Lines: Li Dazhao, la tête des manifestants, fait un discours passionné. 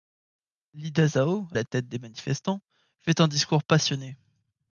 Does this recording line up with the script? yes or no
yes